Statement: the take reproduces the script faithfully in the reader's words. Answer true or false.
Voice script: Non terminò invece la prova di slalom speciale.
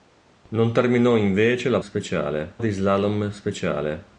false